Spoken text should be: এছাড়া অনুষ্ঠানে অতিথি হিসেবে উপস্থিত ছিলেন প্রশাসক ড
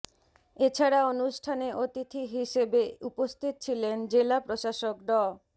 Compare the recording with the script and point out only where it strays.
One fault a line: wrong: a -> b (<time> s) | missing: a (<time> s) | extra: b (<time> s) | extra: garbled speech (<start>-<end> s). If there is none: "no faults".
extra: জেলা (4.1 s)